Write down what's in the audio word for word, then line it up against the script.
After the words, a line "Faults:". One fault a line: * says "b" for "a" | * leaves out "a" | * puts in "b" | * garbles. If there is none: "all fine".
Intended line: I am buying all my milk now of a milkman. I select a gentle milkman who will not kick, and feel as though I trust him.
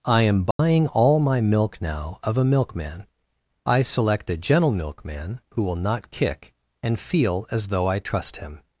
I am buying all my milk now of a milkman. I select a gentle milkman who will not kick, and feel as though I trust him.
Faults:
all fine